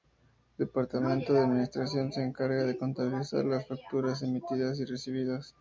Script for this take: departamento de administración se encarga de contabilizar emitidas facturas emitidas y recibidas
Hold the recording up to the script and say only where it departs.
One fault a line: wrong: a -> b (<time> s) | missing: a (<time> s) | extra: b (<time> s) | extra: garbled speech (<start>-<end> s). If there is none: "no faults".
wrong: emitidas -> las (3.5 s)